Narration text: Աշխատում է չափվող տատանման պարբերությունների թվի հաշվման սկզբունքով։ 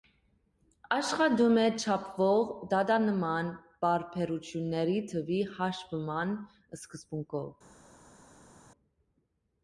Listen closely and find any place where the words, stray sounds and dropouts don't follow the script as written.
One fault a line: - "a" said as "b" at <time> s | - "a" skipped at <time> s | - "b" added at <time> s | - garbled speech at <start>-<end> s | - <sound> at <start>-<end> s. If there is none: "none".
none